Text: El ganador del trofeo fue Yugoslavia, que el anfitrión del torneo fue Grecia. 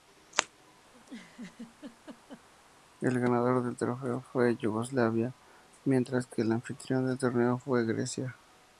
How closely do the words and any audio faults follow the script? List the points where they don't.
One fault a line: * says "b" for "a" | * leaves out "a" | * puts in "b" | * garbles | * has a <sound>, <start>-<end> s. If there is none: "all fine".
* has a laugh, 0.9-2.5 s
* puts in "mientras"